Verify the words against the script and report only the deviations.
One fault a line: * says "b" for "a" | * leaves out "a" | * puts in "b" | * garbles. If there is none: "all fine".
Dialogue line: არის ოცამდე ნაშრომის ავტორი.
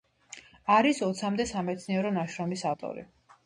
* puts in "სამეცნიერო"